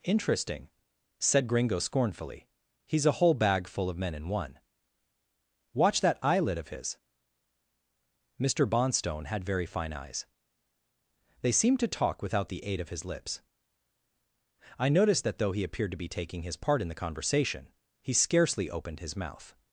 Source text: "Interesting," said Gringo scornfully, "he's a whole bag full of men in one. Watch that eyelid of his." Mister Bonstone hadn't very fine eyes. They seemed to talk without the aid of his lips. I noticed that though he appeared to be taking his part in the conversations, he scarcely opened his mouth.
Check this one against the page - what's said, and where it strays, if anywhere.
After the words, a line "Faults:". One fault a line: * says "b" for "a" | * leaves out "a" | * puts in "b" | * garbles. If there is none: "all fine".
"Interesting," said Gringo scornfully, "he's a whole bag full of men in one. Watch that eyelid of his." Mister Bonstone had very fine eyes. They seemed to talk without the aid of his lips. I noticed that though he appeared to be taking his part in the conversation, he scarcely opened his mouth.
Faults:
* says "had" for "hadn't"
* says "conversation" for "conversations"